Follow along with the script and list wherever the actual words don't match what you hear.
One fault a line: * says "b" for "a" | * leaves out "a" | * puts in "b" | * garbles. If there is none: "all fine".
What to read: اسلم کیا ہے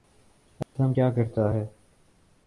* puts in "کرتا"